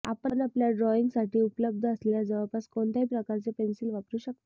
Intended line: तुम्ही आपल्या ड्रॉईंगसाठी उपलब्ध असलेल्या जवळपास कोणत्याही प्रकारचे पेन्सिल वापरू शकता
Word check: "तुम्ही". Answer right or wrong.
wrong